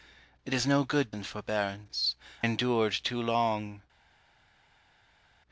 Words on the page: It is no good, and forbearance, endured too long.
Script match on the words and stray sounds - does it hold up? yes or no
yes